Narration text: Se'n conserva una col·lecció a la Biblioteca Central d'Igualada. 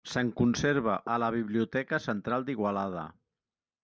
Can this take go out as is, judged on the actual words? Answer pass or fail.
fail